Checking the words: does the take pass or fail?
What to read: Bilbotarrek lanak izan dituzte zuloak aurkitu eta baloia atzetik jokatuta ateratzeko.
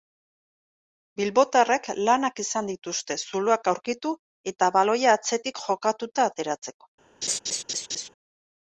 pass